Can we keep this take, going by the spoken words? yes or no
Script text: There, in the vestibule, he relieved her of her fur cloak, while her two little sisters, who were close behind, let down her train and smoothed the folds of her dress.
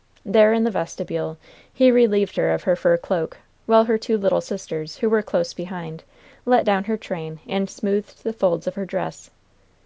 yes